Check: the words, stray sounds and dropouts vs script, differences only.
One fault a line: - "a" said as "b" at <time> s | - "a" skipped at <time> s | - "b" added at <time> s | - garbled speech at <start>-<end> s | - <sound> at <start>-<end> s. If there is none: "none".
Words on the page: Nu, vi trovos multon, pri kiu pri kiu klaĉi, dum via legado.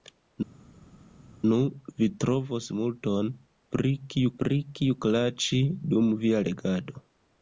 none